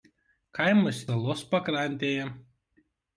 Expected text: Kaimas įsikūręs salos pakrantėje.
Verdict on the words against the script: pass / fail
fail